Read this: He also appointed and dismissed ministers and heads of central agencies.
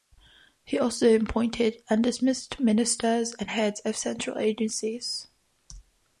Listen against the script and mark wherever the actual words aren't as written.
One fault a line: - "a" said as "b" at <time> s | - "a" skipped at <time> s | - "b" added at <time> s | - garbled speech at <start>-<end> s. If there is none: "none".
none